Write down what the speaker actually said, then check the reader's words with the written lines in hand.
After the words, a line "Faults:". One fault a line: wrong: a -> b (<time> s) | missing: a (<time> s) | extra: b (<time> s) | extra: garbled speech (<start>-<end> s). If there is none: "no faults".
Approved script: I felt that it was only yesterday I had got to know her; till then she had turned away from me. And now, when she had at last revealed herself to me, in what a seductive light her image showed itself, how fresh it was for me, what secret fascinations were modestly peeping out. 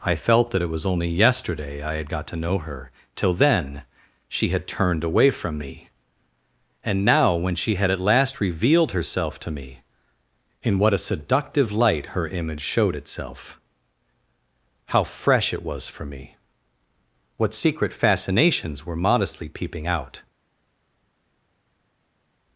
I felt that it was only yesterday I had got to know her; till then she had turned away from me. And now, when she had at last revealed herself to me, in what a seductive light her image showed itself, how fresh it was for me, what secret fascinations were modestly peeping out.
Faults:
no faults